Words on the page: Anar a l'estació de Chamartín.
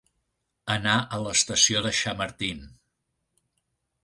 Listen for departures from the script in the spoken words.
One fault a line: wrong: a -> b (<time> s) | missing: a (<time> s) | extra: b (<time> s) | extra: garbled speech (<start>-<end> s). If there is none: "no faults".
no faults